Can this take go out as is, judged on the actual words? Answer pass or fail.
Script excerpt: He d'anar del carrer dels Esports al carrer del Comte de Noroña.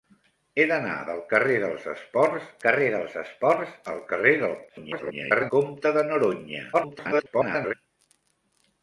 fail